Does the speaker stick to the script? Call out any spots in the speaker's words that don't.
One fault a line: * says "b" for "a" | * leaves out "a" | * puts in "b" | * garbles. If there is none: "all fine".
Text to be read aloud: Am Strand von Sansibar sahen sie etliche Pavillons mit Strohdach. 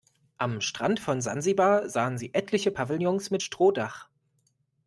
all fine